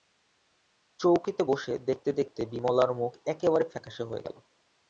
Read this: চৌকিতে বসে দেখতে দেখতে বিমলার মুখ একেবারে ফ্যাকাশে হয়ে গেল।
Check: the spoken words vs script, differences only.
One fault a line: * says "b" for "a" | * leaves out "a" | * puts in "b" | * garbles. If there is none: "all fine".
all fine